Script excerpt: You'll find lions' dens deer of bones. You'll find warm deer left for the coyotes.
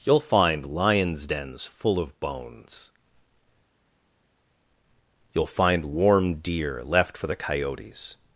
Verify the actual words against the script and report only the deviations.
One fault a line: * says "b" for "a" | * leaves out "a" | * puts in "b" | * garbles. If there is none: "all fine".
* says "full" for "deer"